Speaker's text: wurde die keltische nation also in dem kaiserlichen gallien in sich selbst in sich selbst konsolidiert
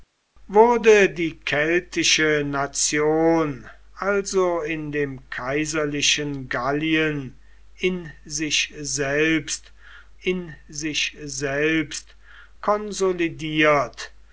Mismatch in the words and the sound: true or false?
false